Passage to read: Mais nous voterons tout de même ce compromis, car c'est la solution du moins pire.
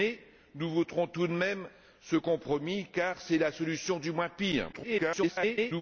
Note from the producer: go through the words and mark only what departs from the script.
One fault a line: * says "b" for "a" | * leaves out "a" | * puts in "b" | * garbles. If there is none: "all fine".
* garbles